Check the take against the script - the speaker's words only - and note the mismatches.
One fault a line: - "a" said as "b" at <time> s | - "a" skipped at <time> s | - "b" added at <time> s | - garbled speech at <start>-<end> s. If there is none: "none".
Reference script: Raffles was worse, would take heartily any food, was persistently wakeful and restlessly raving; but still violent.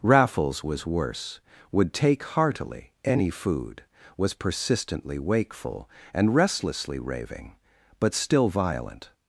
none